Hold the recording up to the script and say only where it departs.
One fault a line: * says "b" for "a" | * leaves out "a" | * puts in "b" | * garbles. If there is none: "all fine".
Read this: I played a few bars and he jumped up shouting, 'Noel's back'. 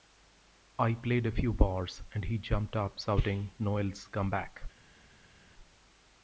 * puts in "come"